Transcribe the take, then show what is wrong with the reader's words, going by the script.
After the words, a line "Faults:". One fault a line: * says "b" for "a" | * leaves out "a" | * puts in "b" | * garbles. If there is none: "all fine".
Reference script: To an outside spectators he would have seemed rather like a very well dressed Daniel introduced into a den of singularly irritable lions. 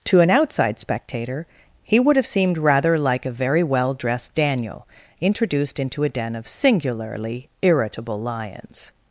To an outside spectator he would have seemed rather like a very well dressed Daniel introduced into a den of singularly irritable lions.
Faults:
* says "spectator" for "spectators"